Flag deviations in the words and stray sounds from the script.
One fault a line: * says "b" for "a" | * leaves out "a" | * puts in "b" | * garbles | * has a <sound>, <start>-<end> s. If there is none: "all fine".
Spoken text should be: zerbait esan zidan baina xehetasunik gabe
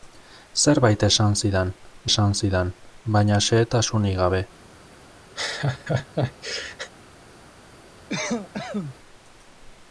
* puts in "esan zidan"
* has a laugh, 5.4-6.9 s
* has a cough, 8.1-9.0 s